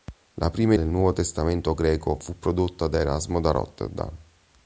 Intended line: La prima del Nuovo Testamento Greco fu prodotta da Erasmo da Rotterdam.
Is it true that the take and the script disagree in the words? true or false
false